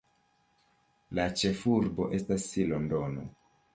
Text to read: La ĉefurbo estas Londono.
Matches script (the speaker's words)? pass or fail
pass